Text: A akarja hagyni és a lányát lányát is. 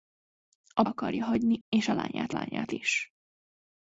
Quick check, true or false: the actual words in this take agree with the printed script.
true